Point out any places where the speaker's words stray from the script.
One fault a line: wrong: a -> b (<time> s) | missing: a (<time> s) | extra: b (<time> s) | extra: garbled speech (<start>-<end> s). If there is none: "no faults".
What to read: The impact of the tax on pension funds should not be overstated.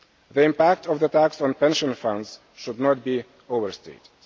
no faults